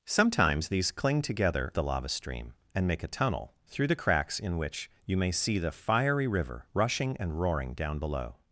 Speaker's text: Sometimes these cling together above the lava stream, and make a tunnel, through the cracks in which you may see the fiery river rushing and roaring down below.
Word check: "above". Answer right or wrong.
wrong